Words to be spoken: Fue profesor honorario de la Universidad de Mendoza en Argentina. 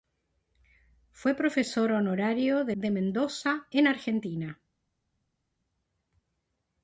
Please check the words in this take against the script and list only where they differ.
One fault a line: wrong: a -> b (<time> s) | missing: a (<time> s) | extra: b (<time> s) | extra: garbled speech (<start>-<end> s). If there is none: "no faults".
missing: la Universidad (2.8 s)